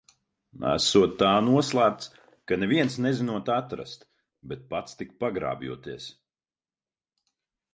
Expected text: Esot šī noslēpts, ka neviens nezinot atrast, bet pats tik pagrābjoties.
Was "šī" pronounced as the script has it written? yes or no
no